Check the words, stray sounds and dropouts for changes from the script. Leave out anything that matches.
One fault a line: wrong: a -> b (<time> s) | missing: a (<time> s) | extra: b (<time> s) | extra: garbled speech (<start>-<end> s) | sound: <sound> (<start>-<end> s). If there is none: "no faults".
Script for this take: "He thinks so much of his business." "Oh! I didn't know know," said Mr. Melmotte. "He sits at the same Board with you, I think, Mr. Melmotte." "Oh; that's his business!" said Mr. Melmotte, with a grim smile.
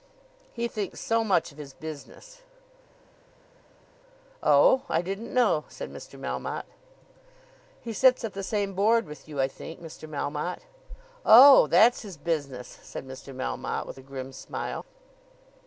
missing: know (5.6 s)